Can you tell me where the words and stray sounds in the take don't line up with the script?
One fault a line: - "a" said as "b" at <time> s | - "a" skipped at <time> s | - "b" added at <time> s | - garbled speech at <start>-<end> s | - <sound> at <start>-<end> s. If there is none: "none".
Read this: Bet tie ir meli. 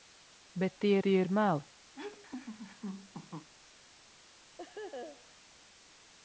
- "tie" added at 1.0 s
- laugh at 1.9-3.5 s
- laugh at 4.6-5.4 s